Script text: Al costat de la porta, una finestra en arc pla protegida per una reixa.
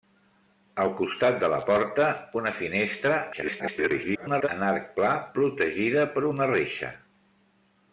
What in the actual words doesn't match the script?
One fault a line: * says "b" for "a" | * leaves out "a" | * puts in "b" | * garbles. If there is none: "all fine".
* garbles